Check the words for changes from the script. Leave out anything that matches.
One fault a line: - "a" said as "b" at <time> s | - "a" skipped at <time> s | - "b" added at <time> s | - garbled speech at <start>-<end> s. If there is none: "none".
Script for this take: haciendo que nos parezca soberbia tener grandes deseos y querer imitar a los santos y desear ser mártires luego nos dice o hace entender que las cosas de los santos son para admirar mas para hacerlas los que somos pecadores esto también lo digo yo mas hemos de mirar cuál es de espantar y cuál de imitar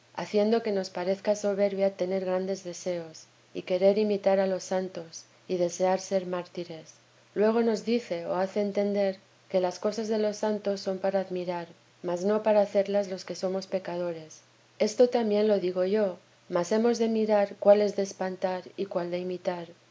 - "no" added at 12.2 s